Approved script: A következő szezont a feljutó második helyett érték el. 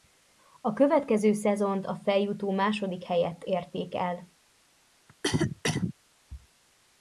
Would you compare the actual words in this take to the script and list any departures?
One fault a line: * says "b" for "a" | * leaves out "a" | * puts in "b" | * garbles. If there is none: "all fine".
all fine